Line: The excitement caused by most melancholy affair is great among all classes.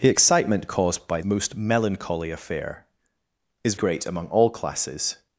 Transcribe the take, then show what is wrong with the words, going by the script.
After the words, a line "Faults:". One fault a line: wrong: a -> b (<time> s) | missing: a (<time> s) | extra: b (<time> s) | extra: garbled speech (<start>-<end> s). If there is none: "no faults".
The excitement caused by most melancholy affair is great among all classes.
Faults:
no faults